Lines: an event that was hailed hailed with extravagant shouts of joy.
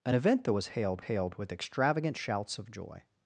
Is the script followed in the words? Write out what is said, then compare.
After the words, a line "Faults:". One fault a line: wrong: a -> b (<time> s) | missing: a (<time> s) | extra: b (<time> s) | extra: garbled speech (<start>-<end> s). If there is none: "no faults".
an event that was hailed hailed with extravagant shouts of joy.
Faults:
no faults